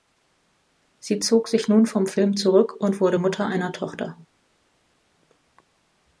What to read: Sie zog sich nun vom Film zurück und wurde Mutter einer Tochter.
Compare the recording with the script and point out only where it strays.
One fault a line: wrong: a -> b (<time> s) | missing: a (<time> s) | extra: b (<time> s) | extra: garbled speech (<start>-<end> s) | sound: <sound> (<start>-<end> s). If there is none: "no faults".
no faults